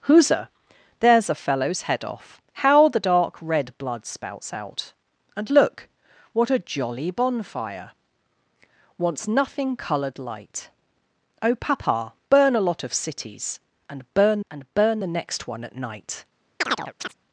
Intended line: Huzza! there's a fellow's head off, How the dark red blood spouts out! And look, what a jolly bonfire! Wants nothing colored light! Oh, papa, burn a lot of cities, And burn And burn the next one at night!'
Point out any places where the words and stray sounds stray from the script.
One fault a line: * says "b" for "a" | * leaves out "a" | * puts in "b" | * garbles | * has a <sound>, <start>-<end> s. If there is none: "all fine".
* has a chirp, 16.6-17.1 s